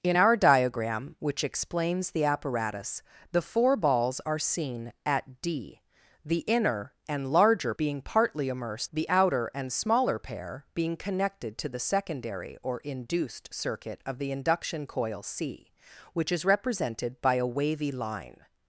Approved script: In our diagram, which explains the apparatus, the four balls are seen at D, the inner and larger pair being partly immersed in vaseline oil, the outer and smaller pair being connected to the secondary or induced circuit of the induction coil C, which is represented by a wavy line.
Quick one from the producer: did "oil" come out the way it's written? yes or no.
no